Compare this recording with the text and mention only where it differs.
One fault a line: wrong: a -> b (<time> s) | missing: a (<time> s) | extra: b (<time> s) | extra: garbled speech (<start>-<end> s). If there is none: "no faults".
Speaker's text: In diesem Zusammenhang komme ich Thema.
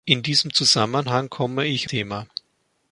no faults